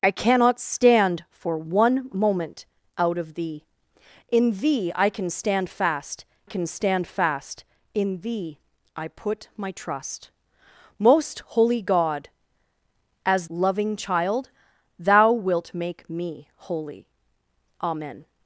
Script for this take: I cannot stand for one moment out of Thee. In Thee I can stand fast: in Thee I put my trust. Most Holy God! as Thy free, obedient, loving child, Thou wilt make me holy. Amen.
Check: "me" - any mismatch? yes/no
no